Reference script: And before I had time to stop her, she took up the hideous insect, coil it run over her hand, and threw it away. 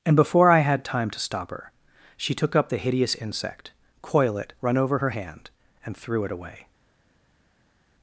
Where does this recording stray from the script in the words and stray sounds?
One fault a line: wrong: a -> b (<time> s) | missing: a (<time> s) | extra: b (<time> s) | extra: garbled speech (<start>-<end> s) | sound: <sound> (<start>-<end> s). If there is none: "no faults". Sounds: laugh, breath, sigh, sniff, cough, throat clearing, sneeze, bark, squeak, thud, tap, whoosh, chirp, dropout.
no faults